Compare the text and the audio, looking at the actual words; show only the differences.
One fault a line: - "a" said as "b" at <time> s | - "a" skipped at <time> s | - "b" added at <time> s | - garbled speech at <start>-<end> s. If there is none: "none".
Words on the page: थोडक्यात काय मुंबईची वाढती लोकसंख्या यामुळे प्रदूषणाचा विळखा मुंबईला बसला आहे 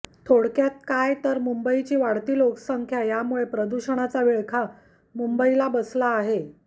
- "तर" added at 1.2 s